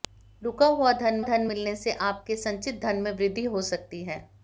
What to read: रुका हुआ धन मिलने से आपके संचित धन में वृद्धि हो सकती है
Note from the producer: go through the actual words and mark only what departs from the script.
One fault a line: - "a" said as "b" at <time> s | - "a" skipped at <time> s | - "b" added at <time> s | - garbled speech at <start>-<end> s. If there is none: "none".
- "धन" added at 1.2 s